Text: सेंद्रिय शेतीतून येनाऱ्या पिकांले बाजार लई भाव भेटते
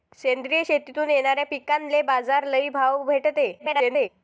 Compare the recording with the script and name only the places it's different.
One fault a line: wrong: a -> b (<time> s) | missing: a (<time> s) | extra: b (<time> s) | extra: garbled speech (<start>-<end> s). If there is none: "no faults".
extra: garbled speech (3.6-4.1 s)